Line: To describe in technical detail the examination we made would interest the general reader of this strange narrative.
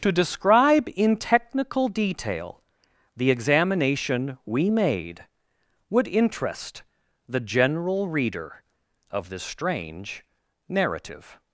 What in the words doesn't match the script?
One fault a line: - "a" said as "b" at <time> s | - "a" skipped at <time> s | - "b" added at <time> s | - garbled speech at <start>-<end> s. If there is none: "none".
none